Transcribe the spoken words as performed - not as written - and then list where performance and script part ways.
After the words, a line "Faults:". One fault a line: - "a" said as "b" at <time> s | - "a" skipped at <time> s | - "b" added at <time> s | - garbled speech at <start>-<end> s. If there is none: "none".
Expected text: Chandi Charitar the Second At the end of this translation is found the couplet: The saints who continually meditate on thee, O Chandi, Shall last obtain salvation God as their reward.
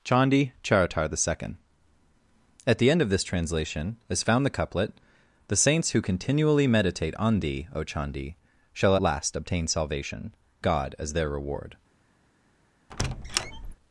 Chandi Charitar the Second At the end of this translation is found the couplet: The saints who continually meditate on thee, O Chandi, Shall last obtain salvation God as their reward.
Faults:
none